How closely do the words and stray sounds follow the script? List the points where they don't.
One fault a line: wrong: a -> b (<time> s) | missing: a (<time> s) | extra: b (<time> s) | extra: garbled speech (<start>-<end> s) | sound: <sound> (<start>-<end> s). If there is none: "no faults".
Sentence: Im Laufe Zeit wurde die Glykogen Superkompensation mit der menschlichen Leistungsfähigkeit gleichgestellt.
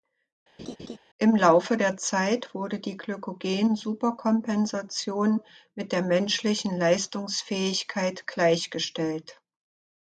sound: laugh (0.6-1.0 s)
extra: der (1.8 s)